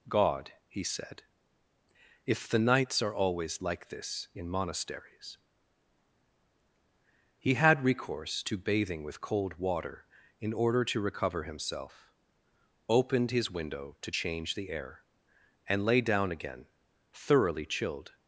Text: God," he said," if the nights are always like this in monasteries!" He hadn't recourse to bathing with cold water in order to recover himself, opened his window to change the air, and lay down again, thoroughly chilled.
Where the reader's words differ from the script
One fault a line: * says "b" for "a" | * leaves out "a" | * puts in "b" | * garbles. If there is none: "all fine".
* says "had" for "hadn't"